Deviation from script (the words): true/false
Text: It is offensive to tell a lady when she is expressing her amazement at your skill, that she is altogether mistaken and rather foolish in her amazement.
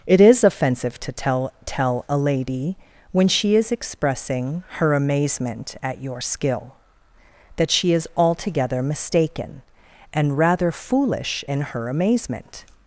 true